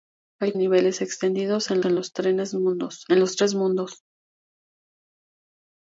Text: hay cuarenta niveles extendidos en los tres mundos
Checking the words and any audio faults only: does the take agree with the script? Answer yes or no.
no